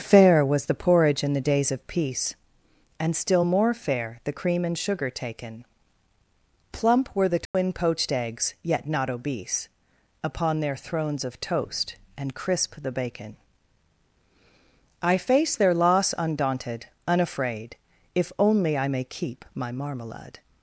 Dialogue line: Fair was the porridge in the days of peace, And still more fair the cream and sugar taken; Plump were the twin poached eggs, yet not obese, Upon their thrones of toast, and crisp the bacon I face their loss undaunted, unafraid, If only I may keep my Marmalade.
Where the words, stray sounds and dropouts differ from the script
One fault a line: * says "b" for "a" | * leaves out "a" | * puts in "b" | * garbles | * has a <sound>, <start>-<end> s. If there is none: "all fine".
* has a dropout, 7.5-7.5 s